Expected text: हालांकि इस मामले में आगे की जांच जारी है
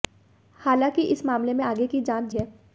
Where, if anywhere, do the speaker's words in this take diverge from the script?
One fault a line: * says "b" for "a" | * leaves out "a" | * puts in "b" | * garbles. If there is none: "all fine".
* leaves out "जारी"